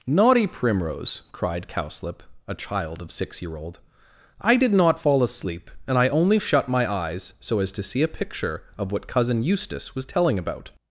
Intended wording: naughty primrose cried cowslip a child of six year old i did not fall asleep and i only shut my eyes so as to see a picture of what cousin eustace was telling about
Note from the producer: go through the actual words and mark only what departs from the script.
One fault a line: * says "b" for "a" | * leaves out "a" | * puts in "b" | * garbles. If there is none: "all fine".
all fine